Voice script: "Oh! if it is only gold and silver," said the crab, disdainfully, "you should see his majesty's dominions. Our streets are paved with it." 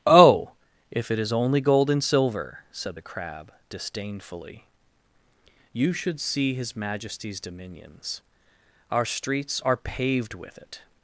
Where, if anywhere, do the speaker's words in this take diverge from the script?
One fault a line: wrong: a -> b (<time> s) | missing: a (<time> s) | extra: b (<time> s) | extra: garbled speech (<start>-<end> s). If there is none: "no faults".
no faults